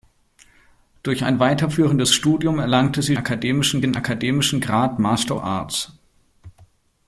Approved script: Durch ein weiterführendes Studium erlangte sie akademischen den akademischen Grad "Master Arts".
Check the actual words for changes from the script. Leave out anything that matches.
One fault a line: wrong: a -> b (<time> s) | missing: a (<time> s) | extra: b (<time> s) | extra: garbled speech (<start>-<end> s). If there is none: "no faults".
no faults